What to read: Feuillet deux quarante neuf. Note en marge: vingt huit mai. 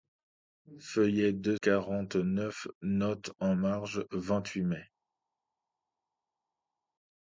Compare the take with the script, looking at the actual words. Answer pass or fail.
pass